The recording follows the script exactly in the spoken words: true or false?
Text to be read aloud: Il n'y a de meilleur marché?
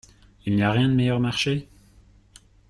false